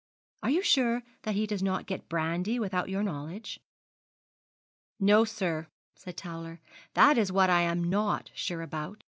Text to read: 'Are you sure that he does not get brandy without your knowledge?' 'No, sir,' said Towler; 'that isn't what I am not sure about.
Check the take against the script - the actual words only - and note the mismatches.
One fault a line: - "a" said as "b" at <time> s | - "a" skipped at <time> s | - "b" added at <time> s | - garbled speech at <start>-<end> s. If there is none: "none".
- "isn't" said as "is" at 7.2 s